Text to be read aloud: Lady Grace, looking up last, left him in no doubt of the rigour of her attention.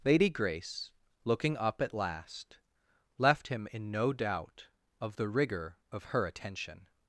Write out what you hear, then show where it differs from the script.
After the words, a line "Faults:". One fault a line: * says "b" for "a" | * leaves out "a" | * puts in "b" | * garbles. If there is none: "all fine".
Lady Grace, looking up at last, left him in no doubt of the rigour of her attention.
Faults:
* puts in "at"